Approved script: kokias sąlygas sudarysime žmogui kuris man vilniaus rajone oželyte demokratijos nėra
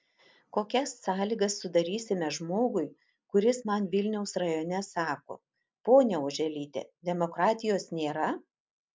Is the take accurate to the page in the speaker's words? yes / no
no